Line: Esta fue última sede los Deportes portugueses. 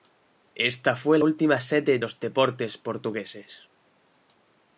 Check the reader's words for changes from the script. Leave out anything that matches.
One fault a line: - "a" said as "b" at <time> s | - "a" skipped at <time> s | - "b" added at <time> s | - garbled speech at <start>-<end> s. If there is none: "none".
none